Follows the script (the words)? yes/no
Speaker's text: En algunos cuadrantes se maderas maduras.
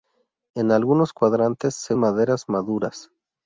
yes